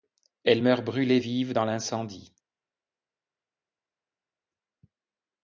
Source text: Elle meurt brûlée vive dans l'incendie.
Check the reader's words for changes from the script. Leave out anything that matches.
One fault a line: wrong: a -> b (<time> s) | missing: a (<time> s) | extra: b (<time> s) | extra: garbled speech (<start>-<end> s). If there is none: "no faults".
no faults